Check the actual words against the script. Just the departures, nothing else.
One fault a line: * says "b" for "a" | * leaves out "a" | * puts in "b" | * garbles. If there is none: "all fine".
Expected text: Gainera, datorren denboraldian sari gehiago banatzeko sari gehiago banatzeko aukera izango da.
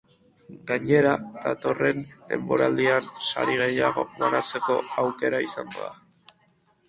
* leaves out "sari gehiago banatzeko"